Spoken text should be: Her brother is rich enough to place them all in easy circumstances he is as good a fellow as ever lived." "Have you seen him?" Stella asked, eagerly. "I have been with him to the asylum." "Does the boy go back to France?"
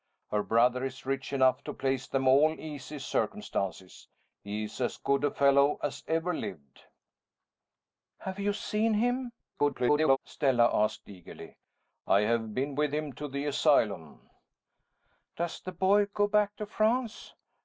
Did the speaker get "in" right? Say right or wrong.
wrong